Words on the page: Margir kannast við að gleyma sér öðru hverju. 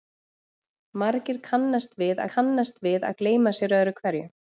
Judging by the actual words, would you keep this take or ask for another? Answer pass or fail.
fail